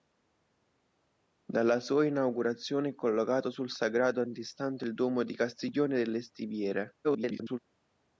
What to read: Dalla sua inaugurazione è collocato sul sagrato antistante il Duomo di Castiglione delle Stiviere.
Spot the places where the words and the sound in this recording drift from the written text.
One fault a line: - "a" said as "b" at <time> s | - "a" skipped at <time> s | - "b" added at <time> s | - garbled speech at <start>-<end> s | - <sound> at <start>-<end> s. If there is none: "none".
- garbled speech at 7.0-7.6 s